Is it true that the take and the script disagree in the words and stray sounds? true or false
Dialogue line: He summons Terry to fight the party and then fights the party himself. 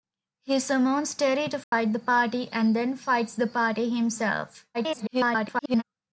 true